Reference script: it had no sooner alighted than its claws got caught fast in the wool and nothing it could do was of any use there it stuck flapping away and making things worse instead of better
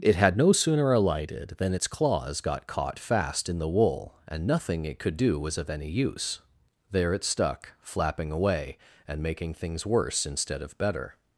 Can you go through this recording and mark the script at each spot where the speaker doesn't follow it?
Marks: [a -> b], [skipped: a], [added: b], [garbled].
it had no sooner alighted than its claws got caught fast in the wool and nothing it could do was of any use there it stuck flapping away and making things worse instead of better